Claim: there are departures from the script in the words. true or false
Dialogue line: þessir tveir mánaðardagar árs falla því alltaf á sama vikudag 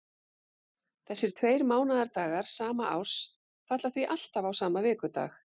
true